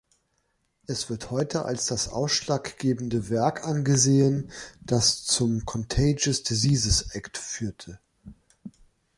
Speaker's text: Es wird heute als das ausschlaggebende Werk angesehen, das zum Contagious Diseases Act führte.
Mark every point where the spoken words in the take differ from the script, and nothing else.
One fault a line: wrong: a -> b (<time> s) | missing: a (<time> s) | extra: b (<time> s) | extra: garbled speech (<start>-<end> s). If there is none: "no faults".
no faults